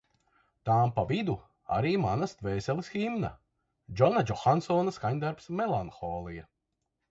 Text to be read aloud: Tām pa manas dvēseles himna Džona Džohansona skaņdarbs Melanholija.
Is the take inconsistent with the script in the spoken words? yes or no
yes